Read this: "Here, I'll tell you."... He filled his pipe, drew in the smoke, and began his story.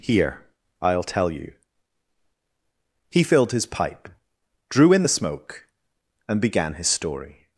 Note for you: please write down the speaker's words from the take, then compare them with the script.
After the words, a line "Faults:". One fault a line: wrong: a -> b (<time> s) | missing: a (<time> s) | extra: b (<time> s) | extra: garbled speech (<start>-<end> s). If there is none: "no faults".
"Here, I'll tell you."... He filled his pipe, drew in the smoke, and began his story.
Faults:
no faults